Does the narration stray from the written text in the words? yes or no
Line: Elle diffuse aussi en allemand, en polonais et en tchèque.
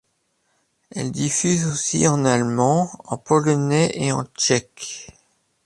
no